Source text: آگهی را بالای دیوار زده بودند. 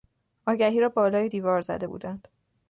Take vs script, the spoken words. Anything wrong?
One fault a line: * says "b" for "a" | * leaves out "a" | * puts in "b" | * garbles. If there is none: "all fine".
all fine